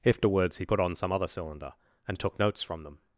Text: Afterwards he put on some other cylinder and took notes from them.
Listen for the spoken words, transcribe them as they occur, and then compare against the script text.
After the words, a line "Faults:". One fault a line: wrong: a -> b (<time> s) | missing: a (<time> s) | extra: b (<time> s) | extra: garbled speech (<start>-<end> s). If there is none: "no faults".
Afterwards he put on some other cylinder and took notes from them.
Faults:
no faults